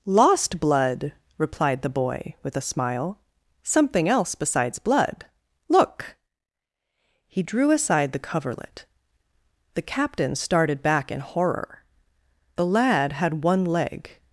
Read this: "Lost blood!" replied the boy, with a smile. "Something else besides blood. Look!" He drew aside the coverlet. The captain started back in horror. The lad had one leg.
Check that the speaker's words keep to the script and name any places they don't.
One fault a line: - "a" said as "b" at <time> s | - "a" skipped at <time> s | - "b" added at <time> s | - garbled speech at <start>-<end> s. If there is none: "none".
none